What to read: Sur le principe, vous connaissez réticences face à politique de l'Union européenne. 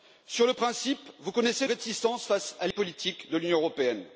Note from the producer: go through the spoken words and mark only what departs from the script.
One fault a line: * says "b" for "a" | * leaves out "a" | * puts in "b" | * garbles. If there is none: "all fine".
all fine